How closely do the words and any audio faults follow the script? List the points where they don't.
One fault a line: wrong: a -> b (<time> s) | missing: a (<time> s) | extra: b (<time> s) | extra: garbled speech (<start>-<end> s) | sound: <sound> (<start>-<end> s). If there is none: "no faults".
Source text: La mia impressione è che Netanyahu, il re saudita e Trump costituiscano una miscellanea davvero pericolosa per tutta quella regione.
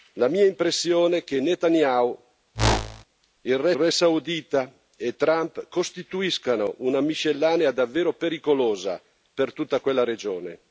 sound: whoosh (2.5-3.0 s)
extra: re (3.7 s)